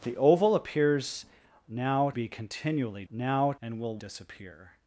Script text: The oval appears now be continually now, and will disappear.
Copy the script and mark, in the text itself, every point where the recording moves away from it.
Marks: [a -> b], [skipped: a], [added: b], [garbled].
The oval appears now be continually now, and will disappear.